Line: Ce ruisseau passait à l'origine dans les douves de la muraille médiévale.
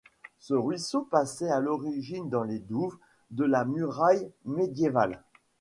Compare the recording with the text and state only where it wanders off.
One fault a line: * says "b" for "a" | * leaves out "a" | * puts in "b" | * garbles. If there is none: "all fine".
all fine